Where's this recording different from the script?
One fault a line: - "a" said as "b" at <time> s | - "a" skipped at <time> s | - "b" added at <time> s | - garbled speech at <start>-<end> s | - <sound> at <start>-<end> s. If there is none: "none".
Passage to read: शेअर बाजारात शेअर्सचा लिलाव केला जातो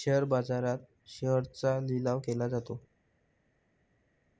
none